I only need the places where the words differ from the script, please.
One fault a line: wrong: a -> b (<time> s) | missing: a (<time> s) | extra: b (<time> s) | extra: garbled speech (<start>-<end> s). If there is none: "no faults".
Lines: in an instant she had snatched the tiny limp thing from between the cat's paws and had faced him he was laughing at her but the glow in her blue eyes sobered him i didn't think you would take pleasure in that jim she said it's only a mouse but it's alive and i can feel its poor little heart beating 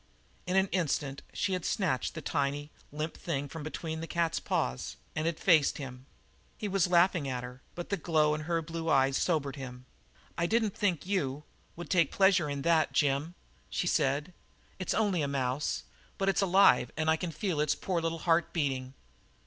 no faults